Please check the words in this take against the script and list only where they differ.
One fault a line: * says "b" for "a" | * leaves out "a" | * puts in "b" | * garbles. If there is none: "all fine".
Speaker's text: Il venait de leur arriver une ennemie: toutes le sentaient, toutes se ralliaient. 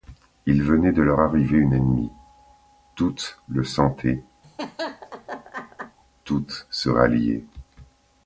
all fine